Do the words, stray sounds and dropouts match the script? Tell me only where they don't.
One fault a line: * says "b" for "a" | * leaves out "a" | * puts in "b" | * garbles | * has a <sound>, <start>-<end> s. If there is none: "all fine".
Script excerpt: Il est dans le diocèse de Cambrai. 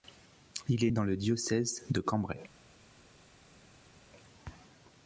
all fine